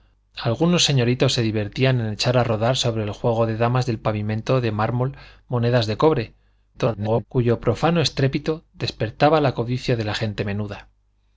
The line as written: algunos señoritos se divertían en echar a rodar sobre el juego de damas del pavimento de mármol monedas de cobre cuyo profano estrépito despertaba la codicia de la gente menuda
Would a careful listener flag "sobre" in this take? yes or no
no